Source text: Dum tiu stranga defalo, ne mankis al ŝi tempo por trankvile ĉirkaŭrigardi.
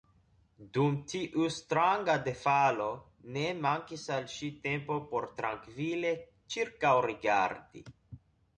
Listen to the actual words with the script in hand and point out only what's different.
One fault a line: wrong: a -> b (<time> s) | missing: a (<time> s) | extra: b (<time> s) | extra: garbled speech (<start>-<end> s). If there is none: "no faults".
no faults